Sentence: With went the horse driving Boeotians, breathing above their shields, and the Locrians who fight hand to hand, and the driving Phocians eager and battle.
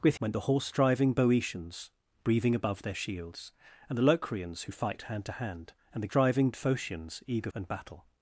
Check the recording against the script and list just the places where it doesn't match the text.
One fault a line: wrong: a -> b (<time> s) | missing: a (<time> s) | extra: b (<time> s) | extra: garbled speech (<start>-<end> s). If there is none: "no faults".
no faults